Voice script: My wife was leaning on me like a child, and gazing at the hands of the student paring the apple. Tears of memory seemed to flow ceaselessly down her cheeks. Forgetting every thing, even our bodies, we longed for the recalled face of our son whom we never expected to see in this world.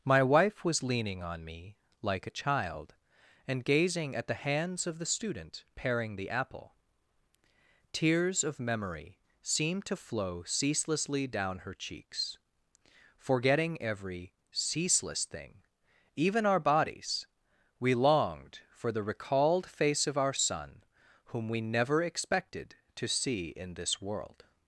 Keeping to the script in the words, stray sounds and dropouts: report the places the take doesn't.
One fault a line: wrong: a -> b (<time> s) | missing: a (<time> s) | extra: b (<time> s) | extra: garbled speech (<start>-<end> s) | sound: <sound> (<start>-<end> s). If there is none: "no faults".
extra: ceaseless (14.5 s)